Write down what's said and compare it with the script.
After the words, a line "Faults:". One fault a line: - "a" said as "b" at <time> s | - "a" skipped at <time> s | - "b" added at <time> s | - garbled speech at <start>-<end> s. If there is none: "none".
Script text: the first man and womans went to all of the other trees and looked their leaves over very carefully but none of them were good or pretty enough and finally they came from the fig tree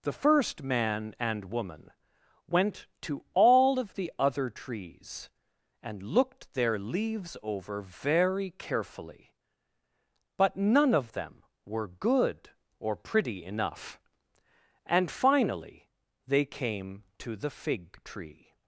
the first man and woman went to all of the other trees and looked their leaves over very carefully but none of them were good or pretty enough and finally they came to the fig tree
Faults:
- "womans" said as "woman" at 1.4 s
- "from" said as "to" at 17.2 s